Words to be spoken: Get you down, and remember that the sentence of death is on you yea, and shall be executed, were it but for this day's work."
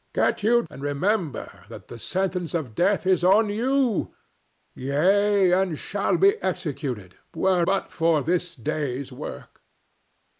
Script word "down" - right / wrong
wrong